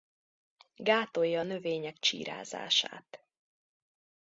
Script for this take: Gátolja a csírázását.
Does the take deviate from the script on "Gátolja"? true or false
false